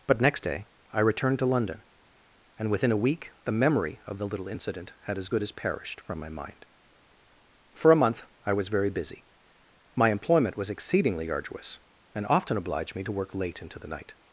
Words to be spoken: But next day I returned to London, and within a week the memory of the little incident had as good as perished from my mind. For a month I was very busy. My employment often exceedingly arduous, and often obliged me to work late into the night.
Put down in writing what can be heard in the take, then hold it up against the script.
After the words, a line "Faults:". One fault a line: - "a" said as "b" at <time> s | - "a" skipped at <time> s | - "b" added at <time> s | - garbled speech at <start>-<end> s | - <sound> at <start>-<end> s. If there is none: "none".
But next day I returned to London, and within a week the memory of the little incident had as good as perished from my mind. For a month I was very busy. My employment was exceedingly arduous, and often obliged me to work late into the night.
Faults:
- "often" said as "was" at 10.6 s